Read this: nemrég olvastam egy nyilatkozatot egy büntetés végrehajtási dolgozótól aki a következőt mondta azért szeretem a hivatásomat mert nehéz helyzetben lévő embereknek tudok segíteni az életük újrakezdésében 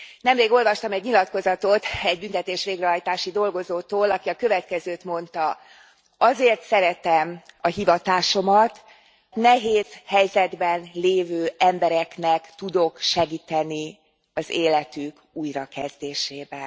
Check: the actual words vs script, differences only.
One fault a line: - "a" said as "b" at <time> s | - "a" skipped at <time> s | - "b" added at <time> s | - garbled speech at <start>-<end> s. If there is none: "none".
- "mert" skipped at 8.8 s